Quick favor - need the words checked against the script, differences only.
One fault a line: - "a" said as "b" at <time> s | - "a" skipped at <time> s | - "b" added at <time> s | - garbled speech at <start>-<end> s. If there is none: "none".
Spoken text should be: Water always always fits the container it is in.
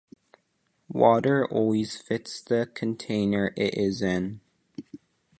- "always" skipped at 1.9 s